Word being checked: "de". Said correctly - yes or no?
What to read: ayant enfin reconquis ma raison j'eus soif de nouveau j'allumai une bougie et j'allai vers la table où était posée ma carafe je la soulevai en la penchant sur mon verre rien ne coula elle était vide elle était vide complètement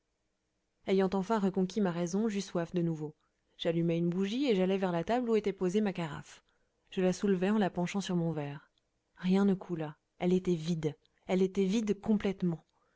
yes